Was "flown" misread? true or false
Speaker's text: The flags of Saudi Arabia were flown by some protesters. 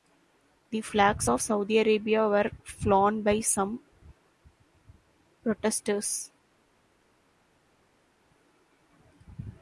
false